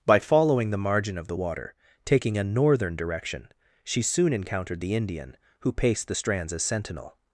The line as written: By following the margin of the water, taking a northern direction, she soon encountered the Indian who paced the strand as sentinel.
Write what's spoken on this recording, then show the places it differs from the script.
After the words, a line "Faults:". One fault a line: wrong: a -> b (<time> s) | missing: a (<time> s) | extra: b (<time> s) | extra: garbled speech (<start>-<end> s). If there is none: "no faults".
By following the margin of the water, taking a northern direction, she soon encountered the Indian who paced the strands as sentinel.
Faults:
wrong: strand -> strands (6.1 s)